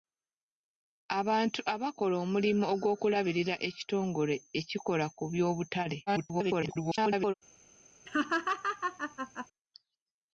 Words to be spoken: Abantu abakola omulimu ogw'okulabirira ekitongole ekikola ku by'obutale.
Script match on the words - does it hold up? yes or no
no